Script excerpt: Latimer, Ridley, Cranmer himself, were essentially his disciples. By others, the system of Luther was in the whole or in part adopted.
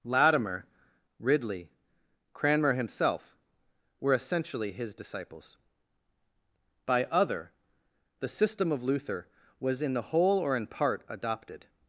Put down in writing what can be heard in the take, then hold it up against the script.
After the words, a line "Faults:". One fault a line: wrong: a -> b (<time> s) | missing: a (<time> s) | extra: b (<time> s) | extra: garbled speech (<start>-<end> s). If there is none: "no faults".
Latimer, Ridley, Cranmer himself, were essentially his disciples. By other, the system of Luther was in the whole or in part adopted.
Faults:
wrong: others -> other (7.0 s)